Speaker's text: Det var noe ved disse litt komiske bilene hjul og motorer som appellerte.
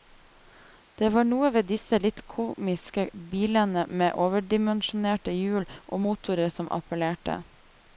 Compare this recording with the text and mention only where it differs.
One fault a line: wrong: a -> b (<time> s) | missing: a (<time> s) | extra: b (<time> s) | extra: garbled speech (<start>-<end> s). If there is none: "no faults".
extra: med overdimensjonerte (4.0 s)